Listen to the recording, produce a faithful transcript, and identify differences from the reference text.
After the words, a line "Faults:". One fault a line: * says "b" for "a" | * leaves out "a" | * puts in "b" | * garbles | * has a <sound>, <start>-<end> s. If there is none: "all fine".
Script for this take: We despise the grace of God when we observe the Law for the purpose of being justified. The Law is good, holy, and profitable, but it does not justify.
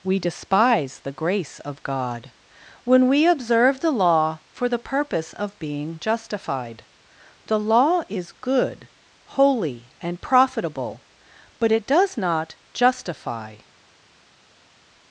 We despise the grace of God when we observe the Law for the purpose of being justified. The Law is good, holy, and profitable, but it does not justify.
Faults:
all fine